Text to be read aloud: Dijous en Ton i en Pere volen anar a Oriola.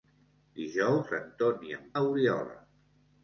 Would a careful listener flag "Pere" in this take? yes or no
yes